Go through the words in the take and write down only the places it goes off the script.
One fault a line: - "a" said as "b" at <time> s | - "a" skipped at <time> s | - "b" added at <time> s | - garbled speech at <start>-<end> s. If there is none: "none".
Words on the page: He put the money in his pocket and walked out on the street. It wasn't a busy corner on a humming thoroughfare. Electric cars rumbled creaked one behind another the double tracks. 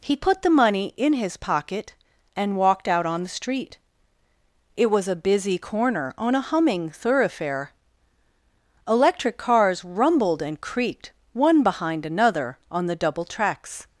- "wasn't" said as "was" at 4.9 s
- "and" added at 10.4 s
- "on" added at 12.7 s